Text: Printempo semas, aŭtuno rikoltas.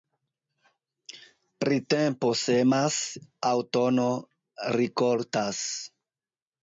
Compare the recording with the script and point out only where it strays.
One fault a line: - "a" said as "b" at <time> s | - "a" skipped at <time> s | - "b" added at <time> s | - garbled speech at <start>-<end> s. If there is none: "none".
none